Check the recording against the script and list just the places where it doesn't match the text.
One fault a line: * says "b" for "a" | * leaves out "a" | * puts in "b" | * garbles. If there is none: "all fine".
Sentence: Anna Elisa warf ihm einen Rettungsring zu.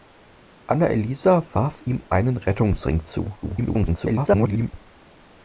* garbles